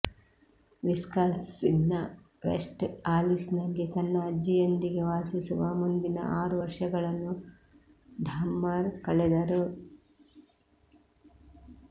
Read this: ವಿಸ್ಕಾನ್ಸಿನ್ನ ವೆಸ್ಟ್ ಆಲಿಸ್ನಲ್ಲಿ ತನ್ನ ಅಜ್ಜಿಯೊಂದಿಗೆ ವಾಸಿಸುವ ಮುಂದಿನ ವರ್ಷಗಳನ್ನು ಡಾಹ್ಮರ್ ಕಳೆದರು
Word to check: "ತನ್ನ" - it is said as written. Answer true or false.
true